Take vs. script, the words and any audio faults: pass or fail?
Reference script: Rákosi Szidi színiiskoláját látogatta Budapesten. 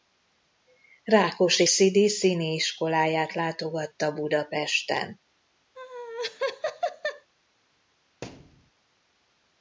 fail